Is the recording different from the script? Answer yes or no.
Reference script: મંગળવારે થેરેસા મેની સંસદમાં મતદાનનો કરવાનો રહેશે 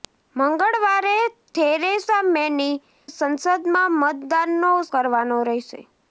no